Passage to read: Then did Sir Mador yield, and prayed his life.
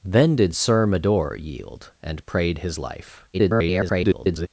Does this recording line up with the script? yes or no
no